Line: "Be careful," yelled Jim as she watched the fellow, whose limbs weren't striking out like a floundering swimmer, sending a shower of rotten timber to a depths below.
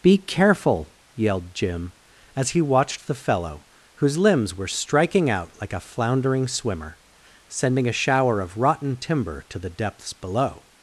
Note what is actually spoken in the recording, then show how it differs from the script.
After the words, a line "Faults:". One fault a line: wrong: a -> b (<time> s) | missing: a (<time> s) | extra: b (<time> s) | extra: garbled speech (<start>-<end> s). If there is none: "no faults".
"Be careful," yelled Jim as he watched the fellow, whose limbs were striking out like a floundering swimmer, sending a shower of rotten timber to the depths below.
Faults:
wrong: she -> he (2.5 s)
wrong: weren't -> were (4.5 s)
wrong: a -> the (9.6 s)